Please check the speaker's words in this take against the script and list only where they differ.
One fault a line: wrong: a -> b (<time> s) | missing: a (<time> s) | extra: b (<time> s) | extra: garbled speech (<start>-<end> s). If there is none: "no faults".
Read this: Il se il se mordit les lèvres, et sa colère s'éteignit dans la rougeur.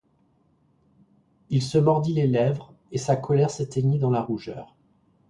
missing: il se (1.8 s)